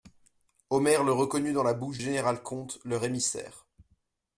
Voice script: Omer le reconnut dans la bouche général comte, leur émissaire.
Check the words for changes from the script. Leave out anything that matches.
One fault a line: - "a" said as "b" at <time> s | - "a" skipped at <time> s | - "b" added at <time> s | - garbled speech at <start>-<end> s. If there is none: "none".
none